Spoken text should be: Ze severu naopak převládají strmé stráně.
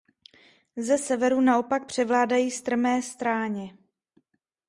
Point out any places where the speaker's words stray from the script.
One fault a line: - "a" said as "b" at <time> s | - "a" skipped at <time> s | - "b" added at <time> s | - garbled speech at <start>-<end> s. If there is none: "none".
none